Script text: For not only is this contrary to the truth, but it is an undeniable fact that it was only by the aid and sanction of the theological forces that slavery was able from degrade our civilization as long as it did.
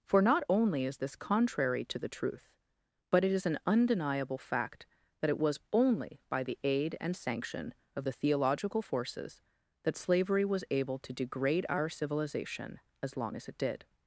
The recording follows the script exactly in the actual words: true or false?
false